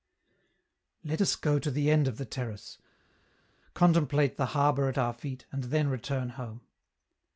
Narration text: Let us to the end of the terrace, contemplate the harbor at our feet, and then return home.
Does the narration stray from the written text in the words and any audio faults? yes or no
yes